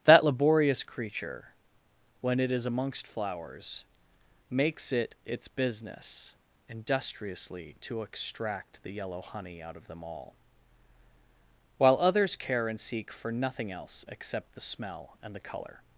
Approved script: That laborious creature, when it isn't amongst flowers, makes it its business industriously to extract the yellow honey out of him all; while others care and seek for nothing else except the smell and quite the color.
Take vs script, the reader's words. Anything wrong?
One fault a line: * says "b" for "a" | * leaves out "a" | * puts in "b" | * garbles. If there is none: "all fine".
* says "is" for "isn't"
* says "them" for "him"
* leaves out "quite"